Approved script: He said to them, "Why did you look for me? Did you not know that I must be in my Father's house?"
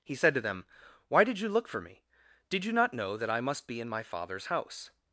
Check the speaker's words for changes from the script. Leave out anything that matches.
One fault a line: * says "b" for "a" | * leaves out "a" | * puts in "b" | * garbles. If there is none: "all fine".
all fine